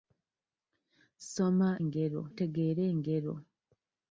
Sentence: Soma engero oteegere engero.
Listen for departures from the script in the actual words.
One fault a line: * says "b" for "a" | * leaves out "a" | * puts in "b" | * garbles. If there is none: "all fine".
all fine